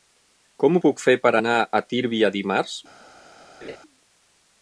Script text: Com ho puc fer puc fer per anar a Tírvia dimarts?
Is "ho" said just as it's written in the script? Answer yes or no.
yes